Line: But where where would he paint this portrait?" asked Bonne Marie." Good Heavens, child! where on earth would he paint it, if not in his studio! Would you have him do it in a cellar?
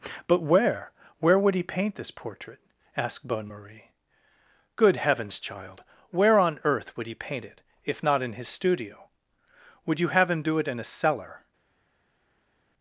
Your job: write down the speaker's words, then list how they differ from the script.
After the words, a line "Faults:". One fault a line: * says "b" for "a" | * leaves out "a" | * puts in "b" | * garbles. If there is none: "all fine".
But where where would he paint this portrait?" asked Bonne Marie." Good Heavens, child! where on earth would he paint it, if not in his studio! Would you have him do it in a cellar?
Faults:
all fine